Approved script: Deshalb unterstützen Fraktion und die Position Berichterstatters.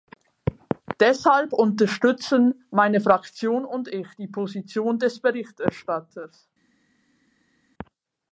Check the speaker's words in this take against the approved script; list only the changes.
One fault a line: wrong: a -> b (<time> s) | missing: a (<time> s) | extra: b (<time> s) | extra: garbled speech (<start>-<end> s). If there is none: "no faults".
extra: meine (2.7 s)
extra: ich (3.9 s)
extra: des (5.0 s)